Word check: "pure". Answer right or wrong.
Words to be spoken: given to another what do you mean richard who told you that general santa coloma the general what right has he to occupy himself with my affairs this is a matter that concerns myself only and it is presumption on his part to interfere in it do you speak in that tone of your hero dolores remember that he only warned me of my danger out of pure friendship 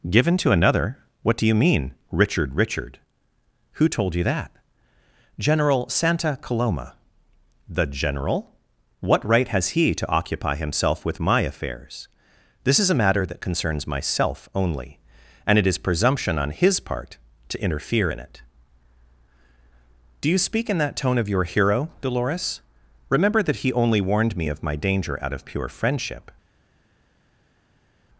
right